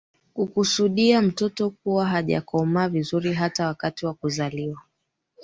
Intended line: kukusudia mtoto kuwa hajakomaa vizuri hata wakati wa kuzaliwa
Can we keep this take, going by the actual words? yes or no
yes